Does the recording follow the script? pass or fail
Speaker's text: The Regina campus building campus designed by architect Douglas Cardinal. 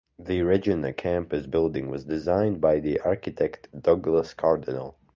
fail